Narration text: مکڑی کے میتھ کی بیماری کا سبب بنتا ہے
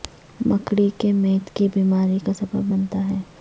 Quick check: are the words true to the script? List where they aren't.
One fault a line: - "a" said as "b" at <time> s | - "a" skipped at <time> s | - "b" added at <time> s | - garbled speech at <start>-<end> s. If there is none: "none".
none